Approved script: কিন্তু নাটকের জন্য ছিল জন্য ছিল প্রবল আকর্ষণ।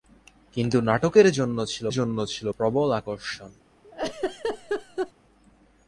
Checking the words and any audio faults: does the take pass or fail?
fail